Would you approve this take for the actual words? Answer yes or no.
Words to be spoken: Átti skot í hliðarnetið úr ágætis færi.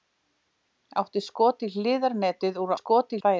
no